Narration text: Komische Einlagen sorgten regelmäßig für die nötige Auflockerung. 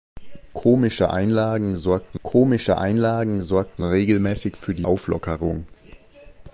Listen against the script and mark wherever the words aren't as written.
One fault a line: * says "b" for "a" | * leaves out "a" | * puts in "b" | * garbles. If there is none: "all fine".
* puts in "komische Einlagen sorgten"
* leaves out "nötige"